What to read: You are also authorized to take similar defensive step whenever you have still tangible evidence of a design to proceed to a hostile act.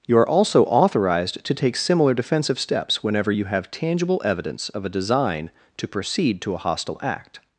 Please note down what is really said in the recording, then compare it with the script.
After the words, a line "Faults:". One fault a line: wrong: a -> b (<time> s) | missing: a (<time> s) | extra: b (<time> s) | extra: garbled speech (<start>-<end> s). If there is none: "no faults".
You are also authorized to take similar defensive steps whenever you have tangible evidence of a design to proceed to a hostile act.
Faults:
wrong: step -> steps (2.6 s)
missing: still (3.7 s)